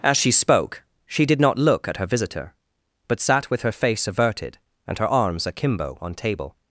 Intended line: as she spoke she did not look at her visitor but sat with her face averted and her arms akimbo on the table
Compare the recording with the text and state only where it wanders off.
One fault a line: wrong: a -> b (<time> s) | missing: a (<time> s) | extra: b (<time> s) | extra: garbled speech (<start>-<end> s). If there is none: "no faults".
missing: the (6.2 s)